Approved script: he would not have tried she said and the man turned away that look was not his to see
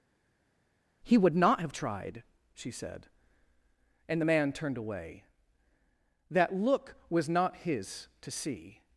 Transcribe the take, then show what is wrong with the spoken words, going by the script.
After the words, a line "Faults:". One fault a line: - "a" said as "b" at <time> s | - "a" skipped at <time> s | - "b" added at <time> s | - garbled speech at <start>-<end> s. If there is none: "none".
he would not have tried she said and the man turned away that look was not his to see
Faults:
none